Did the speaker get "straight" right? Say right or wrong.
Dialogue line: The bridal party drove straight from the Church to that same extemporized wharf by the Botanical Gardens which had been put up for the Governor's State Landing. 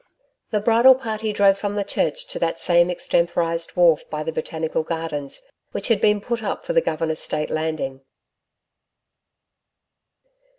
wrong